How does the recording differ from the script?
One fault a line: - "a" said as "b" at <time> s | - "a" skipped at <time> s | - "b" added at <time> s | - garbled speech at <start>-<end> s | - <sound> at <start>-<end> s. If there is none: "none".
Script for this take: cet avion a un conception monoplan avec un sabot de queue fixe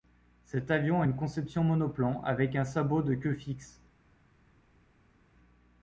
- "un" said as "une" at 1.0 s